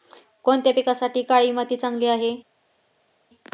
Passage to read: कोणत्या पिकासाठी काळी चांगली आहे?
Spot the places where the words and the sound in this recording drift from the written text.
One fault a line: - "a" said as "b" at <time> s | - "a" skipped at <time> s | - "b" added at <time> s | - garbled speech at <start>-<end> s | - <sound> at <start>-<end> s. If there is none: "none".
- "माती" added at 1.5 s